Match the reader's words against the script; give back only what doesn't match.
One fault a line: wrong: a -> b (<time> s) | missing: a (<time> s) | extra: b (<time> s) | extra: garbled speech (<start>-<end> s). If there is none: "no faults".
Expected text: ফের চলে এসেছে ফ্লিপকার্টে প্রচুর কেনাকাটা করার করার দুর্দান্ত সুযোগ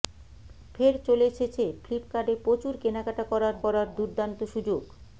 no faults